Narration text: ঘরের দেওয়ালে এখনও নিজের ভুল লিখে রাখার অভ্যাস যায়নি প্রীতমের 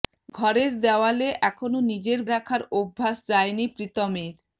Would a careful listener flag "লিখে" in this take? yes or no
yes